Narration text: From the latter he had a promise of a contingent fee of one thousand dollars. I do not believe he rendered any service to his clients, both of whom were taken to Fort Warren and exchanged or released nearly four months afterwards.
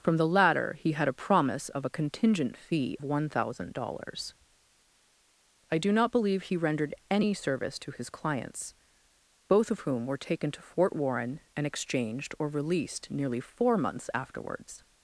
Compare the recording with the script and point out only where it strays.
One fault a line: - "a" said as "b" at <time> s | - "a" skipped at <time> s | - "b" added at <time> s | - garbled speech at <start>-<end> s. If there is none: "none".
- "of" skipped at 3.0 s